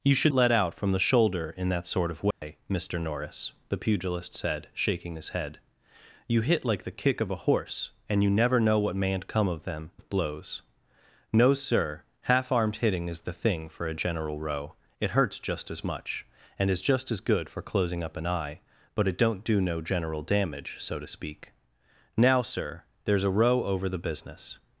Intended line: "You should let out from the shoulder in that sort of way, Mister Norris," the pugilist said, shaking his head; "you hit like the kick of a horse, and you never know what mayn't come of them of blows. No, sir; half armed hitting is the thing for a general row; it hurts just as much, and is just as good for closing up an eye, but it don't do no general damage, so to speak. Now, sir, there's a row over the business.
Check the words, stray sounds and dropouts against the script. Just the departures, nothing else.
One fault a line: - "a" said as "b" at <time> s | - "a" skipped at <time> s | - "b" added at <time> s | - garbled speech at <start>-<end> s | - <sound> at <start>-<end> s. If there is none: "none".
- dropout at 2.3-2.4 s